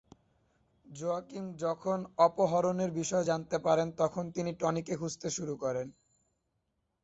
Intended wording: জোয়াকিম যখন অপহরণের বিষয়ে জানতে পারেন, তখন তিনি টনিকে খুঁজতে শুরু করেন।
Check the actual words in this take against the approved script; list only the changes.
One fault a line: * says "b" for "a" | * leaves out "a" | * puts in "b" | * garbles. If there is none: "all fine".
all fine